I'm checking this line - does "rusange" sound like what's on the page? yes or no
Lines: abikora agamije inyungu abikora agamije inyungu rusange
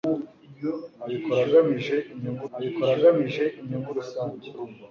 yes